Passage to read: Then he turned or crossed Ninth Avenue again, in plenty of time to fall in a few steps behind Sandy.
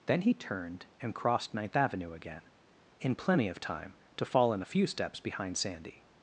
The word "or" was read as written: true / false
false